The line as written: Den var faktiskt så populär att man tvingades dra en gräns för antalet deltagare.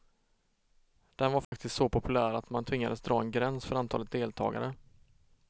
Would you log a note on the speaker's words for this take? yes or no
no